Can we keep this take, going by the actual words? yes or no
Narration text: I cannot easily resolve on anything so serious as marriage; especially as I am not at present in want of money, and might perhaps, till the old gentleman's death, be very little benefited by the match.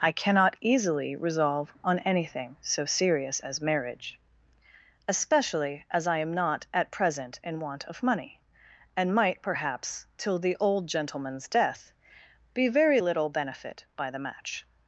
no